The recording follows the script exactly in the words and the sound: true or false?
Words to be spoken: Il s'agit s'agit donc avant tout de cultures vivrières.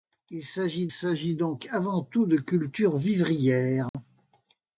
false